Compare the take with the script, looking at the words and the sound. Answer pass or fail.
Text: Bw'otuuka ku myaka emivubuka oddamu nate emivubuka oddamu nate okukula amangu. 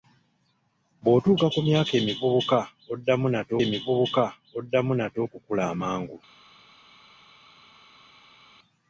pass